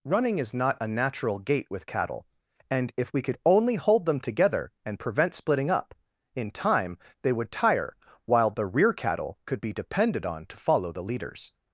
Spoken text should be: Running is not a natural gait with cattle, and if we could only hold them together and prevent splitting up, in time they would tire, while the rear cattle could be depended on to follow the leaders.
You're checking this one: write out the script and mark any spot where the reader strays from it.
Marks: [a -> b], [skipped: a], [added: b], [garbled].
Running is not a natural gait with cattle, and if we could only hold them together and prevent splitting up, in time they would tire, while the rear cattle could be depended on to follow the leaders.